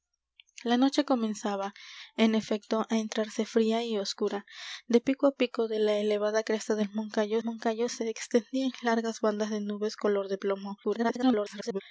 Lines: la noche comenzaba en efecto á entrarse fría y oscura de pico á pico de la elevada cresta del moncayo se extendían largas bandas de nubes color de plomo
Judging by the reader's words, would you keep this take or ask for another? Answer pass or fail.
fail